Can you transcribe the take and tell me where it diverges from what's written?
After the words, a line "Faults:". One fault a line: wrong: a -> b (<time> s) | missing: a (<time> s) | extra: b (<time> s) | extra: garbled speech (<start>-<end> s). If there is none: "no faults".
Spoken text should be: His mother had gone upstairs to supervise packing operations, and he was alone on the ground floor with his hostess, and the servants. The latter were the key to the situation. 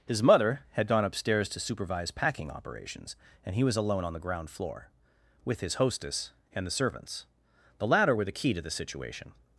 His mother had gone upstairs to supervise packing operations, and he was alone on the ground floor with his hostess, and the servants. The latter were the key to the situation.
Faults:
no faults